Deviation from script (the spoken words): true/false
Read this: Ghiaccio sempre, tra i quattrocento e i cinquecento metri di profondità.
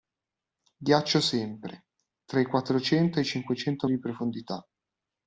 true